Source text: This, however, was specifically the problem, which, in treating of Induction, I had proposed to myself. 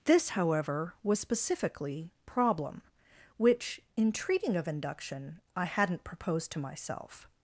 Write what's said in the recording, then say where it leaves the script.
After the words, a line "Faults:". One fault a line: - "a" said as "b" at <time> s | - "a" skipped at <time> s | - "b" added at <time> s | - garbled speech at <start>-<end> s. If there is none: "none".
This, however, was specifically problem, which, in treating of Induction, I hadn't proposed to myself.
Faults:
- "the" skipped at 2.1 s
- "had" said as "hadn't" at 5.7 s